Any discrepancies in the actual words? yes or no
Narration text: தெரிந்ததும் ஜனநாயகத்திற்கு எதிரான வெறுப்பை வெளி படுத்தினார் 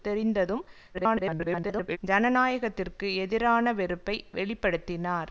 yes